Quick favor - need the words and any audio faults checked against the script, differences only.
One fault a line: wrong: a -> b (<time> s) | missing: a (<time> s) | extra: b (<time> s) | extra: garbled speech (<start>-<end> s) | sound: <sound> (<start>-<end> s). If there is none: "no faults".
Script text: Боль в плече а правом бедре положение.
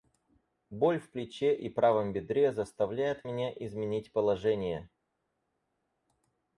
wrong: а -> и (1.6 s)
extra: заставляет меня изменить (2.5 s)